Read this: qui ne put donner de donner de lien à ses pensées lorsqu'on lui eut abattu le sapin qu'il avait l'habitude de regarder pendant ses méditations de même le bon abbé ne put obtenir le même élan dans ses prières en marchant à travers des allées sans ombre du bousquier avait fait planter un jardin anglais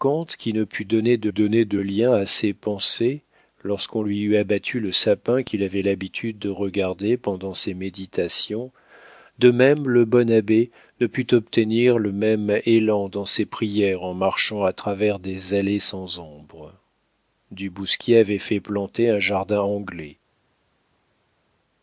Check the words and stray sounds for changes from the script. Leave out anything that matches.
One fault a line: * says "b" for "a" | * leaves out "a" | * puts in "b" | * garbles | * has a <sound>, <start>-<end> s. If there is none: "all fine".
all fine